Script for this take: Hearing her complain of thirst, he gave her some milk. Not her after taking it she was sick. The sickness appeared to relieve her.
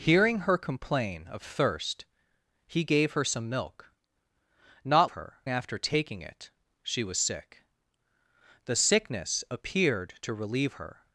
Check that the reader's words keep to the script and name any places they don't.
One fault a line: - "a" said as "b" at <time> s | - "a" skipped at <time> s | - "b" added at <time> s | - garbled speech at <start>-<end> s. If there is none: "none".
none